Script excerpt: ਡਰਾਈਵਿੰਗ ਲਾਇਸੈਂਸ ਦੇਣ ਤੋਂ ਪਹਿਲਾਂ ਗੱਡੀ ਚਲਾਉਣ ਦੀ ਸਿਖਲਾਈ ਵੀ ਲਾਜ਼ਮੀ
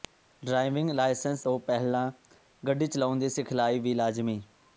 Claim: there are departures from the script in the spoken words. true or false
true